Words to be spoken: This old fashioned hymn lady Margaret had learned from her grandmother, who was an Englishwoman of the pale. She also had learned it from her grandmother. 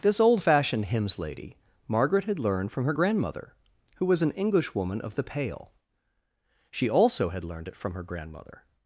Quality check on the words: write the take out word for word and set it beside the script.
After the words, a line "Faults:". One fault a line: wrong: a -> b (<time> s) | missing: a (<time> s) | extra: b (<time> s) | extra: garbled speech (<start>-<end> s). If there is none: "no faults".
This old fashioned hymns lady Margaret had learned from her grandmother, who was an Englishwoman of the pale. She also had learned it from her grandmother.
Faults:
wrong: hymn -> hymns (0.8 s)